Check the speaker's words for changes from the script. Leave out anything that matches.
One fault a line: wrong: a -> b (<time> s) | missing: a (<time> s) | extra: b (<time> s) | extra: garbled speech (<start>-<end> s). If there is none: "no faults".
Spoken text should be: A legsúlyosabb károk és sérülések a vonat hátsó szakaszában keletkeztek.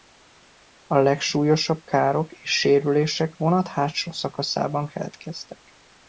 missing: a (3.4 s)